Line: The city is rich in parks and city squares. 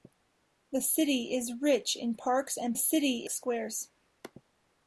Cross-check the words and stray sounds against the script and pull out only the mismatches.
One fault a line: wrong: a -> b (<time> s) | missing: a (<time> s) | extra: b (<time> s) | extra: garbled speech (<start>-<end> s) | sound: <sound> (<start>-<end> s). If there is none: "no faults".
no faults